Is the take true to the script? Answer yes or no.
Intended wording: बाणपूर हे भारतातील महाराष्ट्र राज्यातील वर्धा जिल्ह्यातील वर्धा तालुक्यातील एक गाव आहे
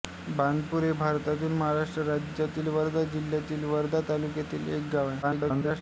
no